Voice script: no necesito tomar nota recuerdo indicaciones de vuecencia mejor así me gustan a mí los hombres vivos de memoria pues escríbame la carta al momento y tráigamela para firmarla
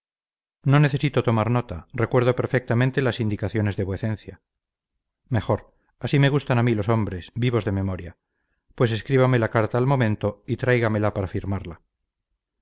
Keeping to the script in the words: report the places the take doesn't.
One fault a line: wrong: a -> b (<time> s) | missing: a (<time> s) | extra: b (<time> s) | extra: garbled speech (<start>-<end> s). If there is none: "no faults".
extra: perfectamente las (2.4 s)